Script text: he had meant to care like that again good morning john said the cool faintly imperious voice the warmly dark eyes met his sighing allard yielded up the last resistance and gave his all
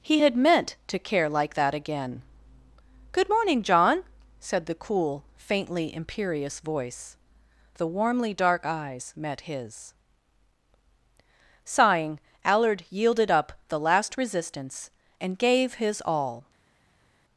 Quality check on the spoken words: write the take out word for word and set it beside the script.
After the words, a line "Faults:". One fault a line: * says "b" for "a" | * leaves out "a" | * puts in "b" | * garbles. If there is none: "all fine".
he had meant to care like that again good morning john said the cool faintly imperious voice the warmly dark eyes met his sighing allard yielded up the last resistance and gave his all
Faults:
all fine